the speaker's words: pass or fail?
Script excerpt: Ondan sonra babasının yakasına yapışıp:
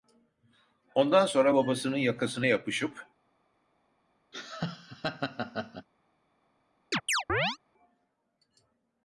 pass